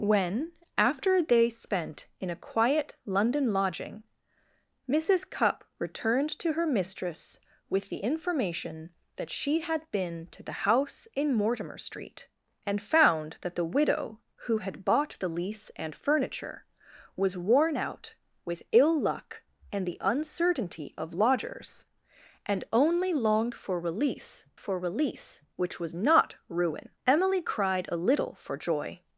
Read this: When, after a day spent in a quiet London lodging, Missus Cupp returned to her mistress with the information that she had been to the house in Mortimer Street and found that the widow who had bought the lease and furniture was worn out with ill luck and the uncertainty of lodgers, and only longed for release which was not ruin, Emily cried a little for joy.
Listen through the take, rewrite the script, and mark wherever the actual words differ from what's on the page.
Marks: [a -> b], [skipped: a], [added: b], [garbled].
When, after a day spent in a quiet London lodging, Missus Cupp returned to her mistress with the information that she had been to the house in Mortimer Street and found that the widow who had bought the lease and furniture was worn out with ill luck and the uncertainty of lodgers, and only longed for release [added: for release] which was not ruin, Emily cried a little for joy.